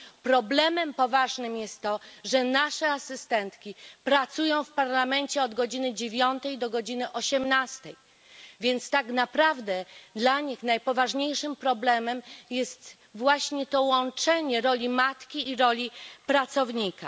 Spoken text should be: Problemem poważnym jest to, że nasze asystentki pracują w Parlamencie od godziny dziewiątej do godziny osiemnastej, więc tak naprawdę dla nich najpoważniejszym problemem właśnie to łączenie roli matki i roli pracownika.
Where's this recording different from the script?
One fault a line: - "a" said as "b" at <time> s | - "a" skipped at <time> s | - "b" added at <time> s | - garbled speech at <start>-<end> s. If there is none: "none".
- "jest" added at 12.5 s